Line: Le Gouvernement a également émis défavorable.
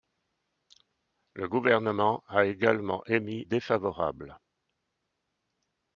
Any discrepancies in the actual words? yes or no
no